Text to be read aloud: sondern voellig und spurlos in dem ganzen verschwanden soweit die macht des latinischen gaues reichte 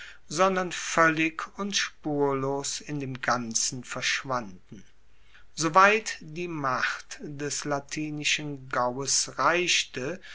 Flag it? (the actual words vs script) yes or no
no